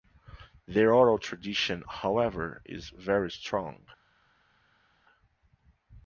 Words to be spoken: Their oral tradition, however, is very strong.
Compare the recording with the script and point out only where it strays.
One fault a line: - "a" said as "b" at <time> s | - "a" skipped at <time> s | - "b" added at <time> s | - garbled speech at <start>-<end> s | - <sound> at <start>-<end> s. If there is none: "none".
none